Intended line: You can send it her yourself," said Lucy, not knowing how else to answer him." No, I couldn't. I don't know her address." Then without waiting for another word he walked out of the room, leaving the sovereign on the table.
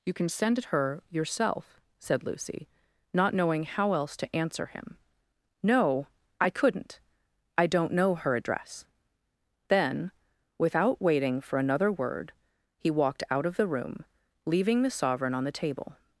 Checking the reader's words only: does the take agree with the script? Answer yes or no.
yes